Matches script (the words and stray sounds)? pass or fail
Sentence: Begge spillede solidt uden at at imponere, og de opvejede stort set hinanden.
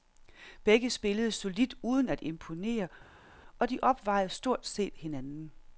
fail